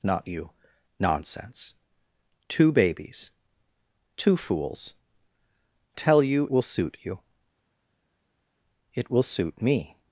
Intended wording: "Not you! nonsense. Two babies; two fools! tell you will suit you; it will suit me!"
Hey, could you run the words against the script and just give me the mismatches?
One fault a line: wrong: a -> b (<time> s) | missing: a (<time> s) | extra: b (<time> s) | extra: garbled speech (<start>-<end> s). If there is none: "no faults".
no faults